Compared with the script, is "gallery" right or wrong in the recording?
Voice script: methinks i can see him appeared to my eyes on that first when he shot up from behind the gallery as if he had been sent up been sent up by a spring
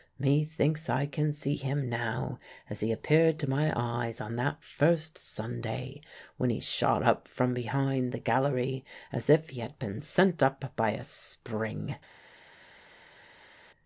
right